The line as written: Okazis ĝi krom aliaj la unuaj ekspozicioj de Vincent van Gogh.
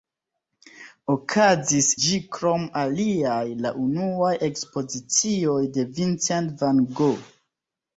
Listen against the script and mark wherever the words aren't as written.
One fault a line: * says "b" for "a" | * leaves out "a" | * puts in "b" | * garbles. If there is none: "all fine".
all fine